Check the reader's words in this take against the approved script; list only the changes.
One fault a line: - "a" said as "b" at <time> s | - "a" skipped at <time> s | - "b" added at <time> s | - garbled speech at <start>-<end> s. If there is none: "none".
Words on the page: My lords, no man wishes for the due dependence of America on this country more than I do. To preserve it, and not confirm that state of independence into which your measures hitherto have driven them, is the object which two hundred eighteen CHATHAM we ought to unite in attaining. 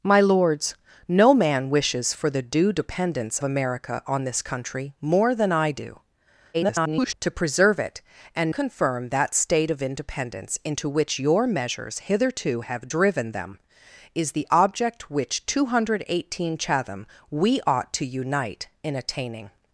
- "of" skipped at 3.4 s
- garbled speech at 6.5-7.1 s
- "not" skipped at 8.5 s